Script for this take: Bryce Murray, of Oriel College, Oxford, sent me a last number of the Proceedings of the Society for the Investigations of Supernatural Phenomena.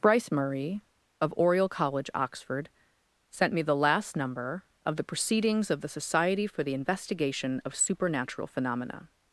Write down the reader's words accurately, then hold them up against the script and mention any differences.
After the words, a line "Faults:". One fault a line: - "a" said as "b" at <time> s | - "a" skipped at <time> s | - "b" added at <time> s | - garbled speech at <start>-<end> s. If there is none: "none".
Bryce Murray, of Oriel College, Oxford, sent me the last number of the Proceedings of the Society for the Investigation of Supernatural Phenomena.
Faults:
- "a" said as "the" at 3.6 s
- "Investigations" said as "Investigation" at 6.7 s